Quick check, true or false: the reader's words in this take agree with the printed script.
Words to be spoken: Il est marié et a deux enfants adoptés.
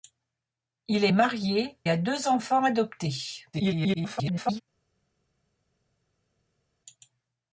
false